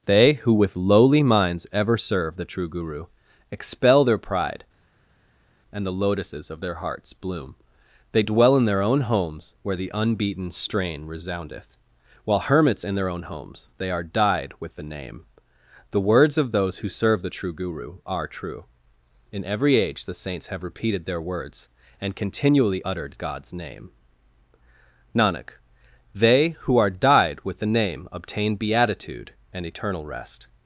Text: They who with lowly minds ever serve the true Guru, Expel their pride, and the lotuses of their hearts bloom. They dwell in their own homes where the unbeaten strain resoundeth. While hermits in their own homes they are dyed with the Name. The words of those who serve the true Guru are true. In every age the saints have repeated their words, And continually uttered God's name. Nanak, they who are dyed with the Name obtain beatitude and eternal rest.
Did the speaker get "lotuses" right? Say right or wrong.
right